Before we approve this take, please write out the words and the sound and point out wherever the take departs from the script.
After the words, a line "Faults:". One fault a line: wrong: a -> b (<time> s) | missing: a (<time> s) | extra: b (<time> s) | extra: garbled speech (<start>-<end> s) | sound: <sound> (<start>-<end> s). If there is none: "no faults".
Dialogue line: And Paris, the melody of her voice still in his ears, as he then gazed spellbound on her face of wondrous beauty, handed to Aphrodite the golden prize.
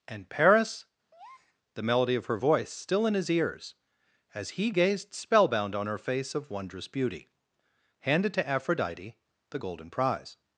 And Paris, the melody of her voice still in his ears, as he gazed spellbound on her face of wondrous beauty, handed to Aphrodite the golden prize.
Faults:
sound: breath (1.1-1.6 s)
missing: then (4.7 s)